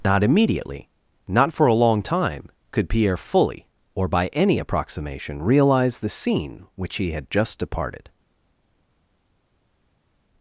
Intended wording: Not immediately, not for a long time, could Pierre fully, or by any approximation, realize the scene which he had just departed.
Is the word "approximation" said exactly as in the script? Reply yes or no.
yes